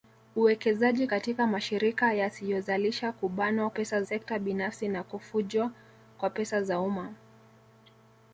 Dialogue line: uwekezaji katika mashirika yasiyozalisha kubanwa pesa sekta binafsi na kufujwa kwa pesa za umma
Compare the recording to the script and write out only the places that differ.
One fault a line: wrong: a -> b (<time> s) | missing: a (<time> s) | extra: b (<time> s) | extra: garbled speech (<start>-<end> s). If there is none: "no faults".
no faults